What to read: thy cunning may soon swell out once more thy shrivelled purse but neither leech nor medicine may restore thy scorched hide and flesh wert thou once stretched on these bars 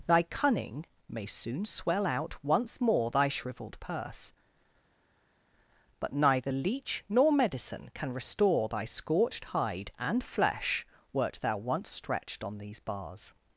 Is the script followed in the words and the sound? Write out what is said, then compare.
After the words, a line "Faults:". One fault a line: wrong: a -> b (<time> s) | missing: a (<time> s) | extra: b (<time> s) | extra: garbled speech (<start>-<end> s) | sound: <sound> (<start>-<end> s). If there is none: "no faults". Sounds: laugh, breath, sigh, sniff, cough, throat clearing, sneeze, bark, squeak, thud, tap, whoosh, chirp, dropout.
thy cunning may soon swell out once more thy shrivelled purse but neither leech nor medicine can restore thy scorched hide and flesh wert thou once stretched on these bars
Faults:
wrong: may -> can (7.9 s)